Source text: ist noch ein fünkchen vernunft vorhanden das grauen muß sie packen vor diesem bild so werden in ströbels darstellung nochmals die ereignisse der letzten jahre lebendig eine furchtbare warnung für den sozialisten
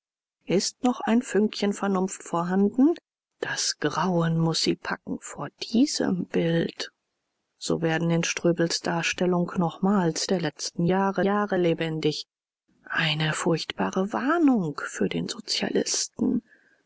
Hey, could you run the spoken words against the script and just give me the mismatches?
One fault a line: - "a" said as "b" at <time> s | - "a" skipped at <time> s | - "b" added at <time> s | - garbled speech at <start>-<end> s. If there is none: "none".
- "die ereignisse" skipped at 10.3 s
- "jahre" added at 11.2 s